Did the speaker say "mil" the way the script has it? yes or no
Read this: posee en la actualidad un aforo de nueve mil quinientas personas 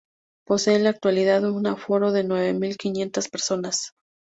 yes